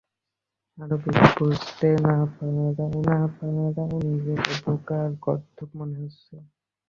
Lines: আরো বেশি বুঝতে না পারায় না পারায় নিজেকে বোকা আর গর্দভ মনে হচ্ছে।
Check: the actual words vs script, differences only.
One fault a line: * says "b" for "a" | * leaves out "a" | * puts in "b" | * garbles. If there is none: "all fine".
all fine